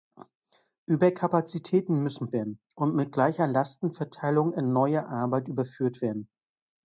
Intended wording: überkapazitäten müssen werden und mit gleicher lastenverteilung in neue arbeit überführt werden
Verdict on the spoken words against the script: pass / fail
pass